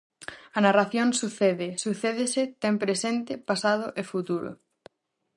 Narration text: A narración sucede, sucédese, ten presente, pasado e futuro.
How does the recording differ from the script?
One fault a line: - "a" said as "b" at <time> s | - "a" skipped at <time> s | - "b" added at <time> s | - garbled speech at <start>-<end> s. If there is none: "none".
none